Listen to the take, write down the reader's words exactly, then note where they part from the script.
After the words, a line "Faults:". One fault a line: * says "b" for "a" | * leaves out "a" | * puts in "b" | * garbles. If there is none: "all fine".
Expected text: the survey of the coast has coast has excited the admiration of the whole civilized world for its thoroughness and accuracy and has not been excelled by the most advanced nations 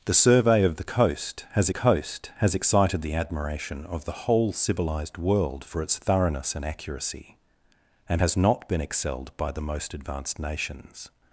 the survey of the coast has coast has excited the admiration of the whole civilized world for its thoroughness and accuracy and has not been excelled by the most advanced nations
Faults:
all fine